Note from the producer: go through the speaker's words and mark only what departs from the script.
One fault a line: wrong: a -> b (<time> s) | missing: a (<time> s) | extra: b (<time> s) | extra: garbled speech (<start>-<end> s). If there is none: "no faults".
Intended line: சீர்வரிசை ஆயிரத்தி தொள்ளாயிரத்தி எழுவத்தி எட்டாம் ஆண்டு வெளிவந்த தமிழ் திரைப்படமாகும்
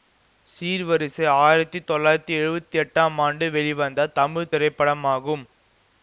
no faults